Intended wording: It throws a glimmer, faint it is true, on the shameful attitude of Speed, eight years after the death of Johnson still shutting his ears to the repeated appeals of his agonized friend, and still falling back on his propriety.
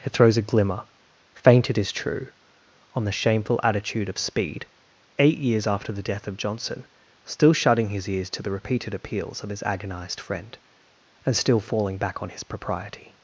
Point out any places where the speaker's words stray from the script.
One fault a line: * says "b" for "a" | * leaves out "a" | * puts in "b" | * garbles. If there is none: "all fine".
all fine